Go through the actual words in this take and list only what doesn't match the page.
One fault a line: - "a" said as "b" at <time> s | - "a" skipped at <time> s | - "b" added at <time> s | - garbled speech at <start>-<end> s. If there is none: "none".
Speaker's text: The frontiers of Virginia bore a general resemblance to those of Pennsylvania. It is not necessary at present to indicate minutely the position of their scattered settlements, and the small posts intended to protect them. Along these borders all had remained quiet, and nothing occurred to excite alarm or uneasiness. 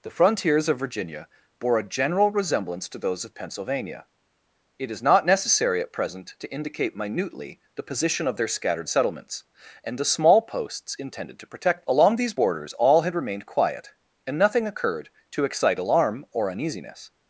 - "them" skipped at 11.8 s